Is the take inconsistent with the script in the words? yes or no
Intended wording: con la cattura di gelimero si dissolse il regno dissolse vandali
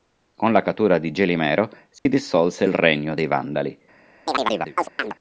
yes